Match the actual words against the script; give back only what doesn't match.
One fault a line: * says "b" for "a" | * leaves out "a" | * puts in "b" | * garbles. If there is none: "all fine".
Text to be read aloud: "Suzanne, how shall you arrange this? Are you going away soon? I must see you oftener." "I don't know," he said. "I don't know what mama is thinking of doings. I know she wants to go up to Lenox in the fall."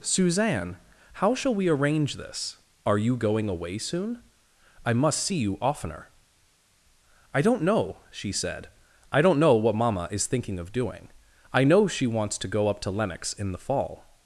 * says "we" for "you"
* says "she" for "he"
* says "doing" for "doings"